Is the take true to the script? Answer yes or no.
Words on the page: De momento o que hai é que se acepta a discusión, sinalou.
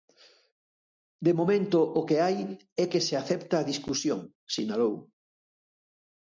yes